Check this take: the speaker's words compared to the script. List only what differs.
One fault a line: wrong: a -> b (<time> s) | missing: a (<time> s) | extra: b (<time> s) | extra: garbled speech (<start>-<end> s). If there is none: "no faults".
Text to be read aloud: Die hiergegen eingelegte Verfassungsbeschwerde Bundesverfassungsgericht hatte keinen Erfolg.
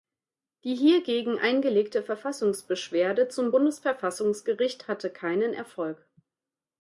extra: zum (3.3 s)